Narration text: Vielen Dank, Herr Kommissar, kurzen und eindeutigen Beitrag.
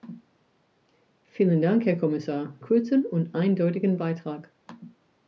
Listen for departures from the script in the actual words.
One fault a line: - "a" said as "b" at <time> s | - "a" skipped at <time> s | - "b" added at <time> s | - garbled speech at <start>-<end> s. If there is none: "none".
none